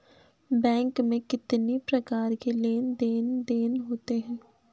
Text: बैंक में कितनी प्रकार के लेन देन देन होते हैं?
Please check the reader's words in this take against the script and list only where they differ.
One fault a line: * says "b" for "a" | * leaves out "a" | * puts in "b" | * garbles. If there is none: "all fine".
all fine